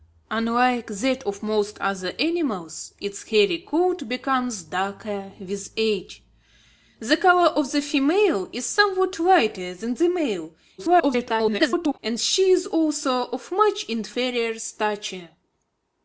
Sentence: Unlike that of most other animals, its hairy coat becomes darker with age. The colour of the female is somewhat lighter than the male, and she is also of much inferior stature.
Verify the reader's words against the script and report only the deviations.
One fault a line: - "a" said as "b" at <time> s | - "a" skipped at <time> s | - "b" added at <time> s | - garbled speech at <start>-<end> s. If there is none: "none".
- garbled speech at 10.8-12.0 s